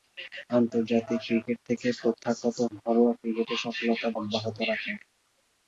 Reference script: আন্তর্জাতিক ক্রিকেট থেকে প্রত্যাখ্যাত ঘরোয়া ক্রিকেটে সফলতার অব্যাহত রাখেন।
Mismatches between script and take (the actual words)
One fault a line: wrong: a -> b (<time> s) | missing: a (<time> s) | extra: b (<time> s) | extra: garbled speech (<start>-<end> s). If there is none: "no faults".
no faults